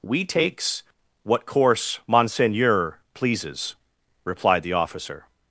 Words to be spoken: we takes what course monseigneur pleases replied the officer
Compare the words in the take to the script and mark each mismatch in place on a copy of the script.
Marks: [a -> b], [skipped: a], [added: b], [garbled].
we takes what course monseigneur pleases replied the officer